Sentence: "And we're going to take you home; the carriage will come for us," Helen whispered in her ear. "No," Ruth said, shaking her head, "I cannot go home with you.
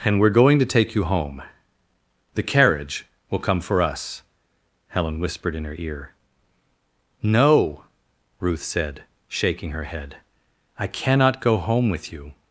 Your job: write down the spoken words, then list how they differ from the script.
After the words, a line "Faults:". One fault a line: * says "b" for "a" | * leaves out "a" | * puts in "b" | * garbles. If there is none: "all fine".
"And we're going to take you home; the carriage will come for us," Helen whispered in her ear. "No," Ruth said, shaking her head, "I cannot go home with you.
Faults:
all fine